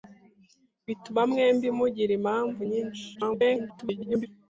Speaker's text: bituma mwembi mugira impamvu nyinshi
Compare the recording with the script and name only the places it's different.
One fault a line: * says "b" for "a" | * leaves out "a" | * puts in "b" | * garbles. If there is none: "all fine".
* garbles